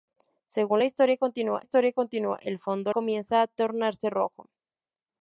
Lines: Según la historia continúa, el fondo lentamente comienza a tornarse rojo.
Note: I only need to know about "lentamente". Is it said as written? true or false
false